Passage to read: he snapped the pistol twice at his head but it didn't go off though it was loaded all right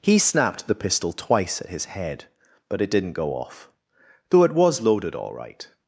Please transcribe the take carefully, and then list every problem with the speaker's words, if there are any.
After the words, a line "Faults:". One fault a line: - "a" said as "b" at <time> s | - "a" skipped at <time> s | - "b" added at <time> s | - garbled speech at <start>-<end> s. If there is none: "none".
he snapped the pistol twice at his head but it didn't go off though it was loaded all right
Faults:
none